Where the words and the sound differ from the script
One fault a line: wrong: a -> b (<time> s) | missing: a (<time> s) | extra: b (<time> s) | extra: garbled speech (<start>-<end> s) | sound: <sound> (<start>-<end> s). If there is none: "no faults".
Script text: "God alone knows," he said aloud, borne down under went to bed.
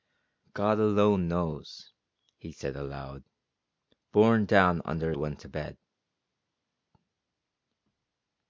no faults